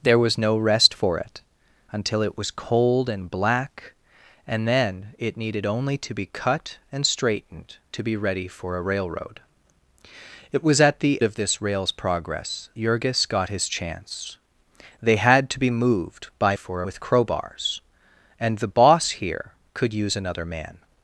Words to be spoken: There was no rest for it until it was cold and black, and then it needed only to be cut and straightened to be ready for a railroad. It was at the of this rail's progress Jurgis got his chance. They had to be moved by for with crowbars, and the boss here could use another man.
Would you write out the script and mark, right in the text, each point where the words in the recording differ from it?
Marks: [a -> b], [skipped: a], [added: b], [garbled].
There was no rest for it until it was cold and black, and then it needed only to be cut and straightened to be ready for a railroad. It was at the of this rail's progress Jurgis got his chance. They had to be moved by for with crowbars, and the boss here could use another man.